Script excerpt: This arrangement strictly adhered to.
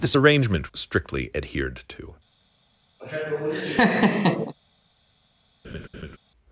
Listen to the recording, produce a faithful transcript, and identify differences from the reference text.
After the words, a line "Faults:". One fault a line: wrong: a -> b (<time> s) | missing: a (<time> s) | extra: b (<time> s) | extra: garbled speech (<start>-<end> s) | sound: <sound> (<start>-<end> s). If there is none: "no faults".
This arrangement strictly adhered to.
Faults:
sound: laugh (3.0-4.5 s)
sound: laugh (5.6-6.2 s)